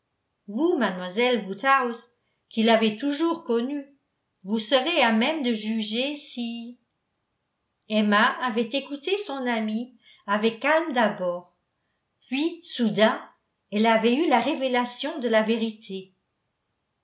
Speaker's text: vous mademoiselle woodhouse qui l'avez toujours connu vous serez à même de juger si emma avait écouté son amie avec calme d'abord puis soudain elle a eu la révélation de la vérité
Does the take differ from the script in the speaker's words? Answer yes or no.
yes